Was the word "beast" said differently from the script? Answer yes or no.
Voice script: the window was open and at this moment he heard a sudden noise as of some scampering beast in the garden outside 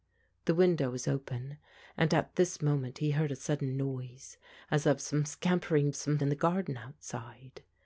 yes